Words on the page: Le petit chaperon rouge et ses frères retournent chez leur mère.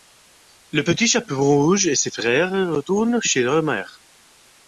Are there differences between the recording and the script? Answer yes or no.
no